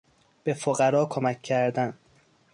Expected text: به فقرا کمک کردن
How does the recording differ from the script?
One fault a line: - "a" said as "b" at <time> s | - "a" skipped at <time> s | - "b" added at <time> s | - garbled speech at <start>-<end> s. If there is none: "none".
none